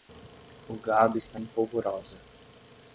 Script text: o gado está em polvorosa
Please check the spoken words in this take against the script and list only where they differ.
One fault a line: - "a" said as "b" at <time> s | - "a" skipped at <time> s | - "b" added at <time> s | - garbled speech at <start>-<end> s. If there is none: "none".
none